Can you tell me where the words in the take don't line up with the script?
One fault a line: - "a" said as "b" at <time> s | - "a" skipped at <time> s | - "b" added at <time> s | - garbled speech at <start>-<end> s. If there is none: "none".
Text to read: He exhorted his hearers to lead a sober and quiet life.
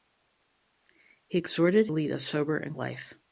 - "his hearers to" skipped at 1.9 s
- "quiet" skipped at 2.8 s